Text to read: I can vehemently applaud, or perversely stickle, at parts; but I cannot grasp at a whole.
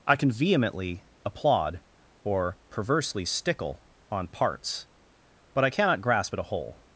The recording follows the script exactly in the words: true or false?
false